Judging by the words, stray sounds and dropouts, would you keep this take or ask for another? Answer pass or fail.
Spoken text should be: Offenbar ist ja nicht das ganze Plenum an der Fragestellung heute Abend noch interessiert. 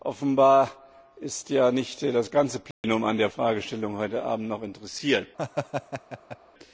fail